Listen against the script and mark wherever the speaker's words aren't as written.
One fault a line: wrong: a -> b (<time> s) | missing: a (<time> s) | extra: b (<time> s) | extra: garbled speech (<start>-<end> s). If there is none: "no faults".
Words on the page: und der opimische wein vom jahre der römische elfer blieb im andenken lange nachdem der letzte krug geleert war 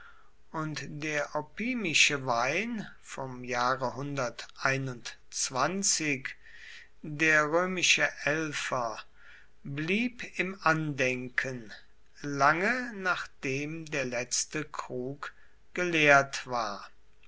no faults